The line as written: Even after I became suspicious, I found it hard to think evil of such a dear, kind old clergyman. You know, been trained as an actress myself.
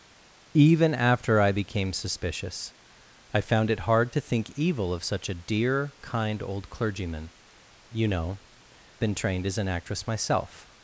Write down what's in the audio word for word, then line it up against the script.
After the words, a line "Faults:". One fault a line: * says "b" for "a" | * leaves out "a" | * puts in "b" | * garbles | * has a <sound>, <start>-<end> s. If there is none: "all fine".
Even after I became suspicious, I found it hard to think evil of such a dear, kind old clergyman. You know, been trained as an actress myself.
Faults:
all fine